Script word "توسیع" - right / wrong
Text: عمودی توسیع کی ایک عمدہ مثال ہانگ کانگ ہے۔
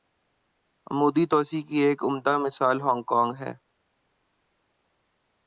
right